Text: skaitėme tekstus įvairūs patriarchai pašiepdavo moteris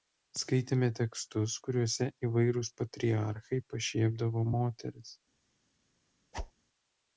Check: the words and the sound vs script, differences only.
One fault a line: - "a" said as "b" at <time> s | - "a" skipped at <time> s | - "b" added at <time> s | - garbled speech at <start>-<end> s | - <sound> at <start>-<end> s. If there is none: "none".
- "kuriuose" added at 1.7 s
- whoosh at 6.3-6.5 s